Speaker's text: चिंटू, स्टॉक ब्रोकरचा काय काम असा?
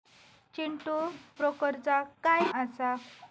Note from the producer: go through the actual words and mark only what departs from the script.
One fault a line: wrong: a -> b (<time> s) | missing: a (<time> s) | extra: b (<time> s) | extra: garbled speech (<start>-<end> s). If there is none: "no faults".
missing: स्टॉक (0.9 s)
missing: काम (2.4 s)